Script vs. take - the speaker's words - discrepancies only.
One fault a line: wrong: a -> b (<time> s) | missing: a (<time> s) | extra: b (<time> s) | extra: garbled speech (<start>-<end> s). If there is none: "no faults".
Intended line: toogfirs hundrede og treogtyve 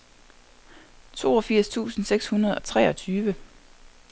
extra: tusind seks (1.7 s)